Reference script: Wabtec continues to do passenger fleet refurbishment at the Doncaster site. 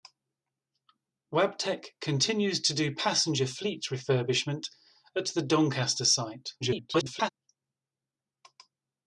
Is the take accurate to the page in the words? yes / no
no